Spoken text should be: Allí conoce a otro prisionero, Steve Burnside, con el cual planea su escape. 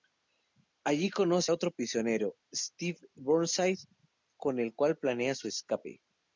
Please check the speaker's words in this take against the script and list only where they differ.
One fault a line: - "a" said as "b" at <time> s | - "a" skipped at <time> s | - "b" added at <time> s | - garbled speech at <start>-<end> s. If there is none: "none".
none